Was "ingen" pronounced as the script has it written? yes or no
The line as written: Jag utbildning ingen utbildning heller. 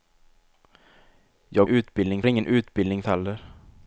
yes